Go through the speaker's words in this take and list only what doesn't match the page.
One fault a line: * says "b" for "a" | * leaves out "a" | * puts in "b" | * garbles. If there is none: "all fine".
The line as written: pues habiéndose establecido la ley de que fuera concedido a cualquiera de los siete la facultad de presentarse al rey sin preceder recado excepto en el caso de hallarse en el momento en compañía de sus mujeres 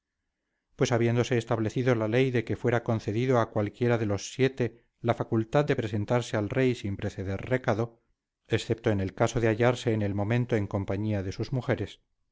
all fine